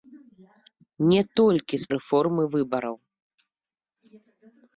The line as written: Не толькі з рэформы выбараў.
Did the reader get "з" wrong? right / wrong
right